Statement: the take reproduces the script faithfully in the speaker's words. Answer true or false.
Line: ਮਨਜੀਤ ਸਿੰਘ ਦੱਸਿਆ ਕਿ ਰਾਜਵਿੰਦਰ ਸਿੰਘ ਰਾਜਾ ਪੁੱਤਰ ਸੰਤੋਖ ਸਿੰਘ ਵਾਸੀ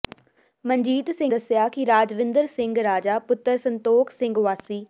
true